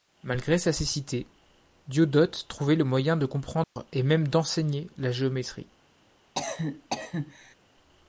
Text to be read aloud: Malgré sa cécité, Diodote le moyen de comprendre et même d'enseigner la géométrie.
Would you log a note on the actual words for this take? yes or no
yes